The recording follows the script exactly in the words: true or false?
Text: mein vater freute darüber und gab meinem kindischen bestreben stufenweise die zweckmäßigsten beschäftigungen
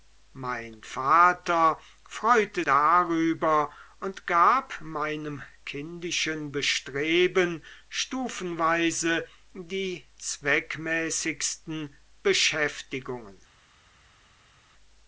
true